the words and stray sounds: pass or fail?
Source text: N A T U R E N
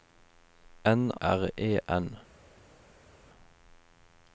fail